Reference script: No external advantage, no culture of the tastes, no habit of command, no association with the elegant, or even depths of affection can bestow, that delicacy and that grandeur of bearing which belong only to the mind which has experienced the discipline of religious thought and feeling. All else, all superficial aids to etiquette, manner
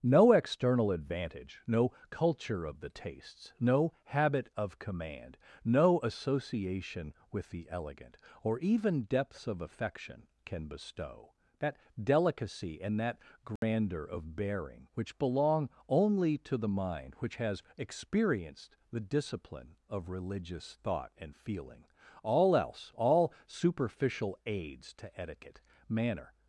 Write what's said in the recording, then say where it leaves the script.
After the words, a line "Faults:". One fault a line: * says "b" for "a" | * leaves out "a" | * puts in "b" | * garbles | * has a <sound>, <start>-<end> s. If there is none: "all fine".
No external advantage, no culture of the tastes, no habit of command, no association with the elegant, or even depths of affection can bestow, that delicacy and that grandeur of bearing which belong only to the mind which has experienced the discipline of religious thought and feeling. All else, all superficial aids to etiquette, manner
Faults:
* has a dropout, 13.6-13.6 s